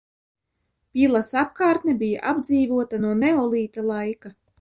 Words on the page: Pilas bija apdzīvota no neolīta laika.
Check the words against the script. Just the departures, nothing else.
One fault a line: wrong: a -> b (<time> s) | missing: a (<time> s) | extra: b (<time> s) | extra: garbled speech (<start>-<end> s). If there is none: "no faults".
extra: apkārtne (1.4 s)